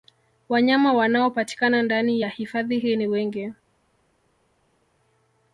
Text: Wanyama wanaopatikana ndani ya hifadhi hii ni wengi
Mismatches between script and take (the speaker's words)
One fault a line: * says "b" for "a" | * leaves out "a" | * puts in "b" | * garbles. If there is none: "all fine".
all fine